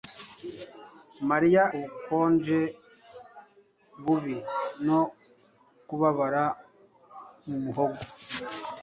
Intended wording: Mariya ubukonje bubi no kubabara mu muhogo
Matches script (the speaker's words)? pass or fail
pass